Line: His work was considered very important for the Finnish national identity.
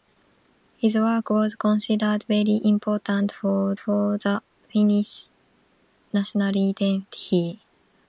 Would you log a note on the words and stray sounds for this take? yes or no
yes